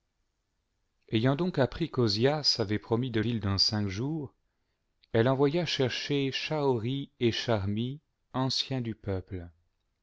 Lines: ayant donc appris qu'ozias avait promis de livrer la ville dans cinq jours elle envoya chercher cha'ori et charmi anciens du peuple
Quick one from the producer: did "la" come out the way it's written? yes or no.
no